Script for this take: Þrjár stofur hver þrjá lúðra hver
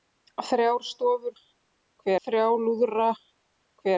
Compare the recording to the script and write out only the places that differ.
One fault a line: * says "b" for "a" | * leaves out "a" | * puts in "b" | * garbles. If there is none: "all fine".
all fine